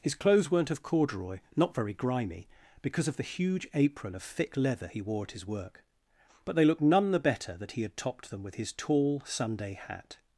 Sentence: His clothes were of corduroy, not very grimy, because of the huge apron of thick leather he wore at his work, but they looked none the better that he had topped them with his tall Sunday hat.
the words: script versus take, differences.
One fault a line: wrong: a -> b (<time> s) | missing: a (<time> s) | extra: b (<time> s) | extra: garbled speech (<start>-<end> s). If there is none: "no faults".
wrong: were -> weren't (0.5 s)